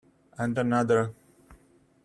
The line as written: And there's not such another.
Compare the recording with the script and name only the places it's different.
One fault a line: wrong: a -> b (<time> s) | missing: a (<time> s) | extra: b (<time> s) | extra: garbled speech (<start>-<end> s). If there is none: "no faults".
missing: there's not such (0.6 s)